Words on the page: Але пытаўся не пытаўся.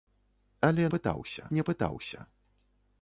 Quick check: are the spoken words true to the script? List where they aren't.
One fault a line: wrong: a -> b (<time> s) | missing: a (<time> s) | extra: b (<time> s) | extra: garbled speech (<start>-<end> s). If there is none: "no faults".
no faults